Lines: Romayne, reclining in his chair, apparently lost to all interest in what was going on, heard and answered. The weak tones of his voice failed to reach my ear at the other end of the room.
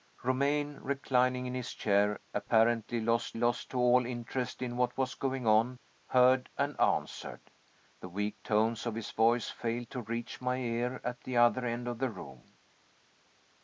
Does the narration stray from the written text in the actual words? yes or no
yes